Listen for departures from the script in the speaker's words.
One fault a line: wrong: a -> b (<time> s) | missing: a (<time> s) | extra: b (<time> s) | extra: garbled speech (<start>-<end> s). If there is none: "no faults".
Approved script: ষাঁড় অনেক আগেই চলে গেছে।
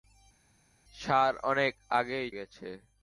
missing: চলে (2.3 s)